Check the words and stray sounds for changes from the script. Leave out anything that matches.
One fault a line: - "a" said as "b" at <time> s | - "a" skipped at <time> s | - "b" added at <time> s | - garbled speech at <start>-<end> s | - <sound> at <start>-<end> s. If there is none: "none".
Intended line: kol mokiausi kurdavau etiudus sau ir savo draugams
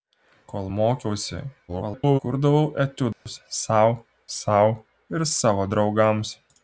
- garbled speech at 1.7-2.2 s
- dropout at 3.1-3.3 s
- "sau" added at 4.4 s